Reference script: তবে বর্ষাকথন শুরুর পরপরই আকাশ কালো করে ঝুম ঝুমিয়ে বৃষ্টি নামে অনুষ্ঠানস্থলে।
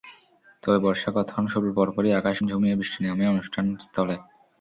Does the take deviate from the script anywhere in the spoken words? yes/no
yes